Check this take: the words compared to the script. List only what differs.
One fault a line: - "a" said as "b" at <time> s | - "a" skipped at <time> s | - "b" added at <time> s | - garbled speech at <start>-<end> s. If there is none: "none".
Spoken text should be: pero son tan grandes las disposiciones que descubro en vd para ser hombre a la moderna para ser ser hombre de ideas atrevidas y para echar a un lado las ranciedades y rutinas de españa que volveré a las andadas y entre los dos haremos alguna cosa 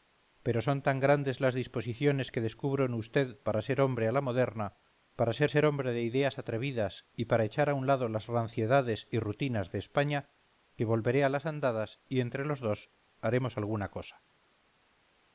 none